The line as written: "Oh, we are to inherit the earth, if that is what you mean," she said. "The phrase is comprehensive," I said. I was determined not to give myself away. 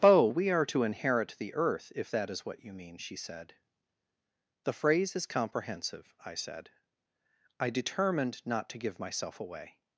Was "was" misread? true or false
true